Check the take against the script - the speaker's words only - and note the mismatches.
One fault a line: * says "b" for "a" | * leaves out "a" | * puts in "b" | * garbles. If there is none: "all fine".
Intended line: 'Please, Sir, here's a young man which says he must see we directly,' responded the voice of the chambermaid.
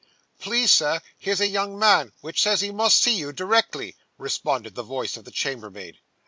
* says "you" for "we"